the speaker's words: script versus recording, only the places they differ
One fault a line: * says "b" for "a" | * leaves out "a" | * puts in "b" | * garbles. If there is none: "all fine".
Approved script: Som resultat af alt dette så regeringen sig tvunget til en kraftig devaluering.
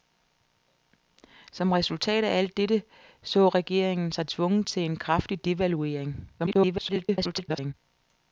* garbles